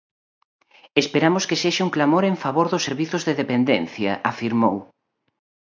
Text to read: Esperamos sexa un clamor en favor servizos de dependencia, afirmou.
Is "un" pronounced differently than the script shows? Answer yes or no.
no